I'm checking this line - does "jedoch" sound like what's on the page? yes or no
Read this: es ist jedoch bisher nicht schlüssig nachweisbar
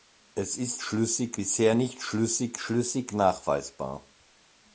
no